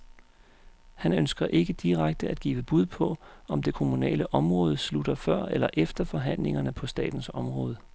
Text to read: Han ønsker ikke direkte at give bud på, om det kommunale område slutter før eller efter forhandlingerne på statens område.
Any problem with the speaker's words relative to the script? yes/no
no